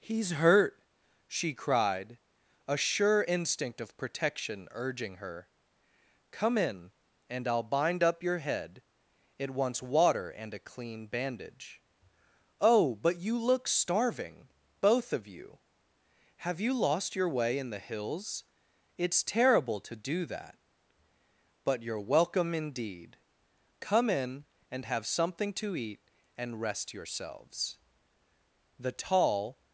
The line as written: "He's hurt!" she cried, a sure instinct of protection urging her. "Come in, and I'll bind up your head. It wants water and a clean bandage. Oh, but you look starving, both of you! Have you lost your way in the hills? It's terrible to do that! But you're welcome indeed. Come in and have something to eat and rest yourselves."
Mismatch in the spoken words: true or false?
true